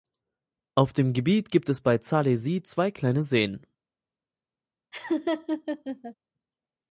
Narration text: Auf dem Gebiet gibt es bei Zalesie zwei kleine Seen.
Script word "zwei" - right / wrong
right